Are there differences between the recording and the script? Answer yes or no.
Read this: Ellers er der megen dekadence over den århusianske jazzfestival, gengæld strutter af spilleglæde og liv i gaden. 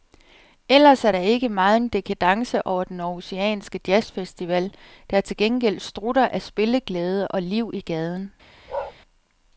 yes